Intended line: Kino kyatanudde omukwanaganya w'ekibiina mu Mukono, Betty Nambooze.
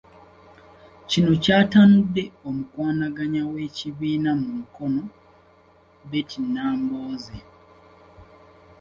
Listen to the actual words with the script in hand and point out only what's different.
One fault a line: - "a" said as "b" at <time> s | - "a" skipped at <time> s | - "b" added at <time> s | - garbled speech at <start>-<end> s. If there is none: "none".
none